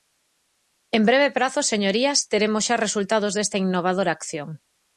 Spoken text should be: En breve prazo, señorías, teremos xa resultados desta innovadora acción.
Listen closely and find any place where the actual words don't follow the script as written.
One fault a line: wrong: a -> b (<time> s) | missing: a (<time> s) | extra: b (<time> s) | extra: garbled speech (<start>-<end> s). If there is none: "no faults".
no faults